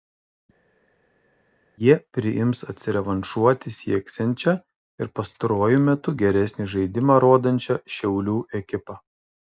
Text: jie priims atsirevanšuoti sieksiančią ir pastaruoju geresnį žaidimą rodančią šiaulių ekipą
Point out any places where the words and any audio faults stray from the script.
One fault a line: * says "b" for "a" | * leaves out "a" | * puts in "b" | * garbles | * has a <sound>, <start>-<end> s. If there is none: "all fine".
* puts in "metu"